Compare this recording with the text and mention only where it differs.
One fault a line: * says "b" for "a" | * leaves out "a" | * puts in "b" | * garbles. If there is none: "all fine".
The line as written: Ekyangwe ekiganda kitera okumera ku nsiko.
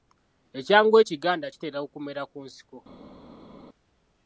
all fine